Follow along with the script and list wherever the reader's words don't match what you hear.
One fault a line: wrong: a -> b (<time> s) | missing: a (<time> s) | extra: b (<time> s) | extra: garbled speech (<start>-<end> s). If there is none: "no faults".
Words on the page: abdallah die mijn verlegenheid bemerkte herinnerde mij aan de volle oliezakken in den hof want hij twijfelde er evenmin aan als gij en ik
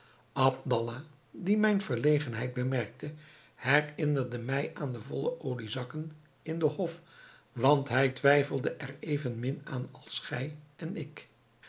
no faults